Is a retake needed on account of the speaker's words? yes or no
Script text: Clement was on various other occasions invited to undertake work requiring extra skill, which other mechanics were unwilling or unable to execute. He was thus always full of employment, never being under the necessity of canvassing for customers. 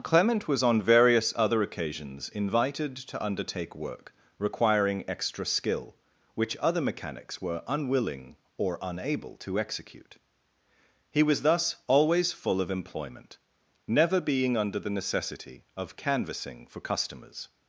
no